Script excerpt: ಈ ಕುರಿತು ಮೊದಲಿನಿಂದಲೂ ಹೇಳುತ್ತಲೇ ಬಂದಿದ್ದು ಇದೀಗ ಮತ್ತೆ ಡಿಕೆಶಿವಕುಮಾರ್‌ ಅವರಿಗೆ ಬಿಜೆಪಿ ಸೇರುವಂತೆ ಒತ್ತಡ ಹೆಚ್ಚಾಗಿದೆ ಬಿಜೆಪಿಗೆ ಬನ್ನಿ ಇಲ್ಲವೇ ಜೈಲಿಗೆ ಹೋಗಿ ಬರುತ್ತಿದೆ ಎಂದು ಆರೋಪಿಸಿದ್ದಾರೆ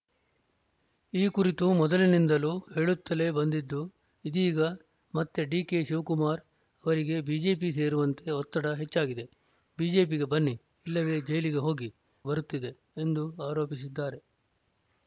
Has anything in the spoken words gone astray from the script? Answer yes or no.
no